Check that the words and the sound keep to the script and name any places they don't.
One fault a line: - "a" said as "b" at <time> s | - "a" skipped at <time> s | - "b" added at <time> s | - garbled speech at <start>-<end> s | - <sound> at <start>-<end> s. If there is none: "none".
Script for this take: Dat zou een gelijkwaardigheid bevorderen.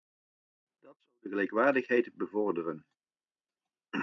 - "een" said as "de" at 1.2 s